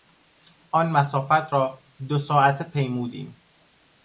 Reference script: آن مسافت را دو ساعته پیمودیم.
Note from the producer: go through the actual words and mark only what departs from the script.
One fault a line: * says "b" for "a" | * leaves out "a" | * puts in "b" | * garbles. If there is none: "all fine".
all fine